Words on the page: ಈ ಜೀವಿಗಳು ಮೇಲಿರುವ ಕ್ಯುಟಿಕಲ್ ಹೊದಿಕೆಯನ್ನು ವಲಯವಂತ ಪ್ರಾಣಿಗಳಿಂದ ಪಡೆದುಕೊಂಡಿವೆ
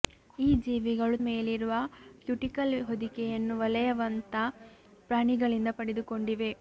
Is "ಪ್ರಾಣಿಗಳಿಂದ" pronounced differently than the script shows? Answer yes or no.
no